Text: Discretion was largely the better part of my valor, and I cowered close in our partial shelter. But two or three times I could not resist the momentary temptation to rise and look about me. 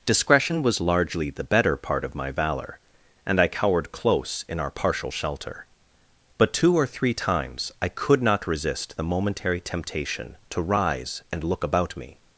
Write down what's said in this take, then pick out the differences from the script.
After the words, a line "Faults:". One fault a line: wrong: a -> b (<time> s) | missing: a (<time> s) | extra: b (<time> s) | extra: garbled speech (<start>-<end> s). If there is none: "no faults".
Discretion was largely the better part of my valor, and I cowered close in our partial shelter. But two or three times I could not resist the momentary temptation to rise and look about me.
Faults:
no faults